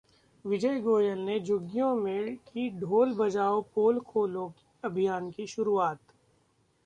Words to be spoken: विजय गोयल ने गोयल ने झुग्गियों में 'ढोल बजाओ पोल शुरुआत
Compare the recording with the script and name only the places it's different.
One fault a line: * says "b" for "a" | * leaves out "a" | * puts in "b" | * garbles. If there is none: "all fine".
* leaves out "गोयल ने"
* puts in "की"
* puts in "खोलो अभियान की"